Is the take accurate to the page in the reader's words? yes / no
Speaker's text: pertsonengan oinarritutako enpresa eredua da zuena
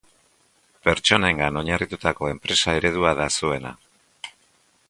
yes